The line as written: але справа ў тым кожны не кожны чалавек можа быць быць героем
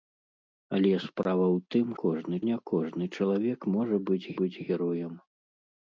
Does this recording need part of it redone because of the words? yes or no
no